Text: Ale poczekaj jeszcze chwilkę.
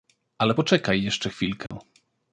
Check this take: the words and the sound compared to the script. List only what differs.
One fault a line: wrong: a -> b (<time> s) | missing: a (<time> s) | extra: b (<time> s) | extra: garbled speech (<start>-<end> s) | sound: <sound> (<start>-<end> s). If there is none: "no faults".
sound: dropout (1.7-1.7 s)